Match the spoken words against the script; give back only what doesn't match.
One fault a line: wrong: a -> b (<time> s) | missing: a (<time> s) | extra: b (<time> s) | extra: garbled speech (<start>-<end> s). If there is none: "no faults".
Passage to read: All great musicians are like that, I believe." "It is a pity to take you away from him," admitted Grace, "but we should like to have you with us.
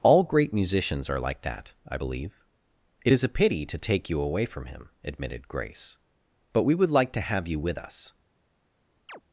wrong: should -> would (6.8 s)